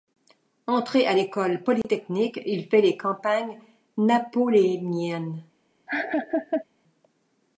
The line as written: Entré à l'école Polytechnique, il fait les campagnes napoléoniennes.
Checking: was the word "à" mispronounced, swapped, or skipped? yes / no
no